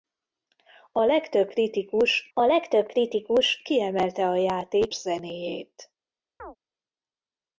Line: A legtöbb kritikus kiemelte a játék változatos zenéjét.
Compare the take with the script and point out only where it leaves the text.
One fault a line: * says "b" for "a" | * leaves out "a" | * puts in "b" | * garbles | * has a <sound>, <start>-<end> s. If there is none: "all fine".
* puts in "a legtöbb kritikus"
* leaves out "változatos"
* has a chirp, 6.4-6.6 s